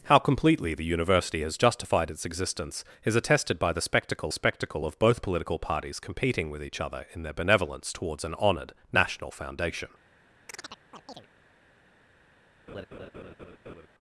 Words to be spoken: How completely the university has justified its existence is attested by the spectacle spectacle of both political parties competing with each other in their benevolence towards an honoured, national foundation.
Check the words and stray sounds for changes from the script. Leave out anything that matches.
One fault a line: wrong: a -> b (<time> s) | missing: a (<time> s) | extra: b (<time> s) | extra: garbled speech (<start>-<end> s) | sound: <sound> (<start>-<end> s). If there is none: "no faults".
sound: chirp (10.5-11.3 s)
sound: laugh (12.7-13.9 s)